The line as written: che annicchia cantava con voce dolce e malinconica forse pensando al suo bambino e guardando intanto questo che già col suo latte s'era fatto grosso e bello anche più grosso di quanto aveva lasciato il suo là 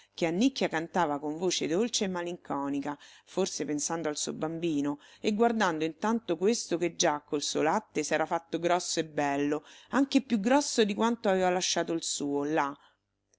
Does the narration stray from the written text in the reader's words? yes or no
no